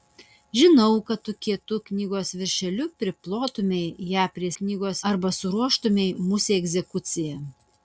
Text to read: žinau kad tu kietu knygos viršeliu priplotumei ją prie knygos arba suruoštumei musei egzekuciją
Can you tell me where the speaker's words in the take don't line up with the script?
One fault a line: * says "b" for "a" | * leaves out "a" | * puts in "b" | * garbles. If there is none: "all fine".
all fine